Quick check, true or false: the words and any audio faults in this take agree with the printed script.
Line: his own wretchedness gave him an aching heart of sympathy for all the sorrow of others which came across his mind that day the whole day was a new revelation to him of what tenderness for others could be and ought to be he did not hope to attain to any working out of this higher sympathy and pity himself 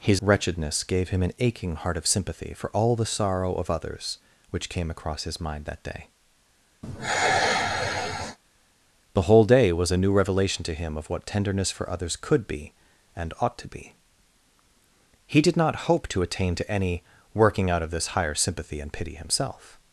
false